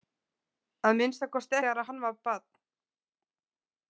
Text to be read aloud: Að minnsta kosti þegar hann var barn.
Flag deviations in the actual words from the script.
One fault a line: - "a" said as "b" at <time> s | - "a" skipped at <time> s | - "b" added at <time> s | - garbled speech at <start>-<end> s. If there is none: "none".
none